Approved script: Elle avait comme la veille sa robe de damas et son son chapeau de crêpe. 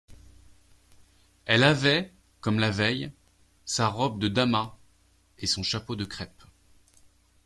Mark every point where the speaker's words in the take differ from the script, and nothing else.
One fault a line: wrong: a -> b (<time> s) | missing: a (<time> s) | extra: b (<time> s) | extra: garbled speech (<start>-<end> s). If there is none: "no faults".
missing: son (5.6 s)